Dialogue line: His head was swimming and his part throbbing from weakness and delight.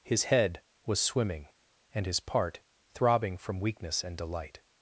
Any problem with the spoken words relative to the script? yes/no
no